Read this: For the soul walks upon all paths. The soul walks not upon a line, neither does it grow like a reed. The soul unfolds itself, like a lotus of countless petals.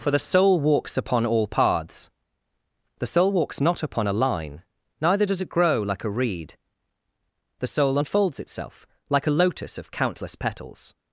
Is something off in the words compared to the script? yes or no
no